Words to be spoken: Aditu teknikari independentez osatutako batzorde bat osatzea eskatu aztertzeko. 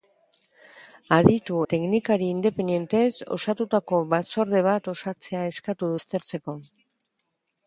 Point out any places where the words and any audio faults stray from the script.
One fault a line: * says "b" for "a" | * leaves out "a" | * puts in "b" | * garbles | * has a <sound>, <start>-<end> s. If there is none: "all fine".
all fine